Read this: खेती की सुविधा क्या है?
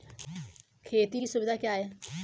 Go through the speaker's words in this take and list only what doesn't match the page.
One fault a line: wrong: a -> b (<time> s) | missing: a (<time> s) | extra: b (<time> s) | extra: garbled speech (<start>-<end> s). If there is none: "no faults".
no faults